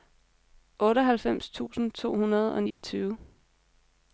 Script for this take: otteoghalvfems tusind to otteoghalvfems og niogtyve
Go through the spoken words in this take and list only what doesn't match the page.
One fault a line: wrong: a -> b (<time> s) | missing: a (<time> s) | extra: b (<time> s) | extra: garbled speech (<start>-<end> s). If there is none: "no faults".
wrong: otteoghalvfems -> hundrede (2.1 s)